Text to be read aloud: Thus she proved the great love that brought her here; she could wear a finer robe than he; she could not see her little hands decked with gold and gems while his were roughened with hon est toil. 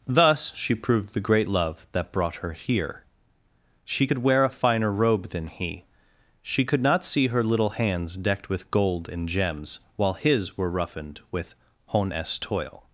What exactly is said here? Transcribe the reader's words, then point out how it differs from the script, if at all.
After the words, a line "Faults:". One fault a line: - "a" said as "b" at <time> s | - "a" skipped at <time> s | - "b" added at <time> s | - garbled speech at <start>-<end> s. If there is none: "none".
Thus she proved the great love that brought her here; she could wear a finer robe than he; she could not see her little hands decked with gold and gems while his were roughened with hon est toil.
Faults:
none